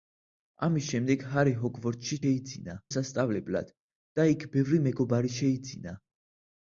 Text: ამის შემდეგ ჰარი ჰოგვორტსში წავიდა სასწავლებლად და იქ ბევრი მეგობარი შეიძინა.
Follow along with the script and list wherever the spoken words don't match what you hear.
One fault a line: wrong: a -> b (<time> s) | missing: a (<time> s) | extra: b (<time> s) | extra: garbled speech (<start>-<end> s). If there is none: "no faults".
wrong: წავიდა -> შეიძინა (2.2 s)